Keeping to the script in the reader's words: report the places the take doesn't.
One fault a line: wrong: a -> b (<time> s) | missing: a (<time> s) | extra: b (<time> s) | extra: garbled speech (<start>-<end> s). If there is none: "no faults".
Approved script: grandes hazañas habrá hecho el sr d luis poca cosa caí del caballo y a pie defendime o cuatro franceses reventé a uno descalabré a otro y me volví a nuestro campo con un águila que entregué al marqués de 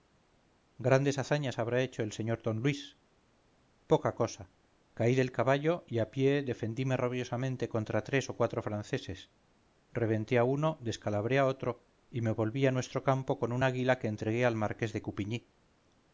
extra: rabiosamente contra tres (7.0 s)